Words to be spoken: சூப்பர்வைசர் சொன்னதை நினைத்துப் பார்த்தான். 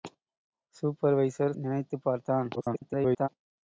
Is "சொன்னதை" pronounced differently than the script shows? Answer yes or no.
yes